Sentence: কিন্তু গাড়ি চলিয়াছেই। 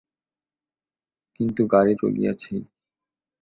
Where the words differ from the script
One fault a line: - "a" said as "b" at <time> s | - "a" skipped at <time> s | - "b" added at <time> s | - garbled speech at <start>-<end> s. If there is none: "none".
none